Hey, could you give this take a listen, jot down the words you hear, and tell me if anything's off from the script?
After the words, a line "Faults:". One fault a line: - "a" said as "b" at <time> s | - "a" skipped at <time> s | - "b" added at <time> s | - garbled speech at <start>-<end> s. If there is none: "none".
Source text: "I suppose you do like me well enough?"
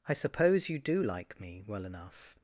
"I suppose you do like me well enough?"
Faults:
none